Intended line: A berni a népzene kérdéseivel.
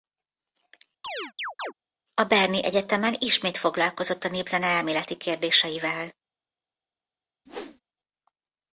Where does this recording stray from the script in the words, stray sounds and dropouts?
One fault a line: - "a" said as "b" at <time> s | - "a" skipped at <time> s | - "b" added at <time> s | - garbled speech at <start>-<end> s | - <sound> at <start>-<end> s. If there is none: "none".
- chirp at 1.0-1.7 s
- "egyetemen ismét foglalkozott" added at 2.6 s
- "elméleti" added at 4.7 s
- whoosh at 7.5-7.8 s